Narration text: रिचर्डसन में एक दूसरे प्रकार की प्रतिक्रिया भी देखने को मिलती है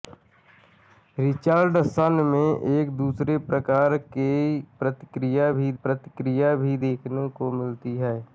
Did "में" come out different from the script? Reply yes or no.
no